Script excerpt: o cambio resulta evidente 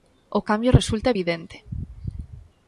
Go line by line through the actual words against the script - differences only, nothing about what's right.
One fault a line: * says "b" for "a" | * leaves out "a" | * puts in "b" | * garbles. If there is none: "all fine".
all fine